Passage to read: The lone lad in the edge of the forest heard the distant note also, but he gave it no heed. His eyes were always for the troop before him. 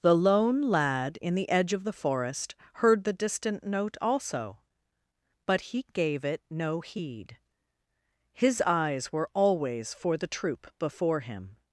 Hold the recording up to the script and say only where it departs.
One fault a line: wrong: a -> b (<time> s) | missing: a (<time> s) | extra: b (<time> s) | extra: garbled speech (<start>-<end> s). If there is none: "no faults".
no faults